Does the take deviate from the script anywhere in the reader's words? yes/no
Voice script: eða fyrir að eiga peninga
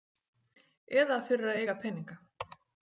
no